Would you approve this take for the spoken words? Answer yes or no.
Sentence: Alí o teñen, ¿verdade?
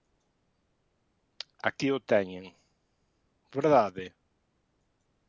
no